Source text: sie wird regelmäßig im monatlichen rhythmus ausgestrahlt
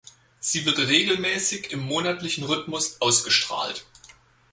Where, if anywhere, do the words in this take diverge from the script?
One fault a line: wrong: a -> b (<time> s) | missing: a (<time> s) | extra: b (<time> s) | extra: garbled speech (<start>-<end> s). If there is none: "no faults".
no faults